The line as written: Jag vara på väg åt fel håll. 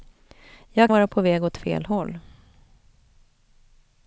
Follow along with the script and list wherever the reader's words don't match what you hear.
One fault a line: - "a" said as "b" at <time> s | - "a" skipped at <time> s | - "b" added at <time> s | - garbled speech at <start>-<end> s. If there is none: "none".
none